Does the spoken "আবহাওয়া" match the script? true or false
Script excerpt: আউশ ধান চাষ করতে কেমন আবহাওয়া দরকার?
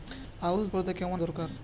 false